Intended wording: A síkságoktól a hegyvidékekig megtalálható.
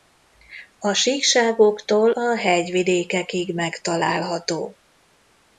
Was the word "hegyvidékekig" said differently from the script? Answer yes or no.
no